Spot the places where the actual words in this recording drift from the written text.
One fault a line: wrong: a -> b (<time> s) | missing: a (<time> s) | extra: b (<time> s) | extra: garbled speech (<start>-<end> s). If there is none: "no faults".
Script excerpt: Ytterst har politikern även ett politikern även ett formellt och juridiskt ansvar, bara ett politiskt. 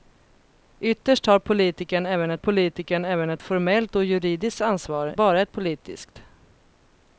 no faults